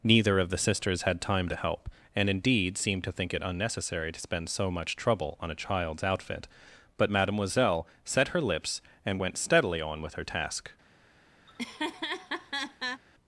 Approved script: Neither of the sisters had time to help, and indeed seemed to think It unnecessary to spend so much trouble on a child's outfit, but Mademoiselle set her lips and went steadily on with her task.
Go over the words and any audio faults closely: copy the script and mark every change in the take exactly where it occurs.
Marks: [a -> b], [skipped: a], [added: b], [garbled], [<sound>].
Neither of the sisters had time to help, and indeed seemed to think It unnecessary to spend so much trouble on a child's outfit, but Mademoiselle set her lips and went steadily on with her task. [laugh]